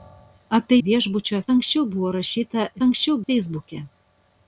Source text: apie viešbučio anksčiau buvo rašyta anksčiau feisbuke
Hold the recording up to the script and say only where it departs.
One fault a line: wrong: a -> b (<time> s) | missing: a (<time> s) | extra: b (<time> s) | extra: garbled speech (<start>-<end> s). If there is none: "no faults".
no faults